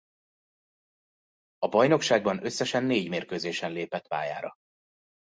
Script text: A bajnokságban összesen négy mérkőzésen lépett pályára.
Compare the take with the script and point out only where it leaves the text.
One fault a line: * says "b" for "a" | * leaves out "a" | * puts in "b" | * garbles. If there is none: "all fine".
all fine